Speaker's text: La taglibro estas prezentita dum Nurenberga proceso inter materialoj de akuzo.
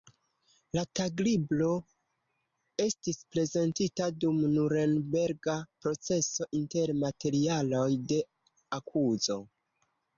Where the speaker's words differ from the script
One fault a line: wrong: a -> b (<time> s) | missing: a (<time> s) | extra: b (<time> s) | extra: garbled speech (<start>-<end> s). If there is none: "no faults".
wrong: estas -> estis (2.9 s)